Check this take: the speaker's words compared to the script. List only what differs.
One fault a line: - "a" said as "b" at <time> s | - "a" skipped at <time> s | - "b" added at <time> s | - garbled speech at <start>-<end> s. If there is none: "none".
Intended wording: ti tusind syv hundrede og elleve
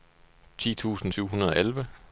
none